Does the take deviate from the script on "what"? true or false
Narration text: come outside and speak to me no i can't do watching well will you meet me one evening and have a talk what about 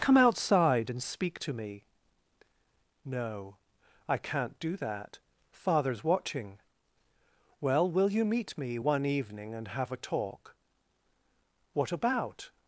false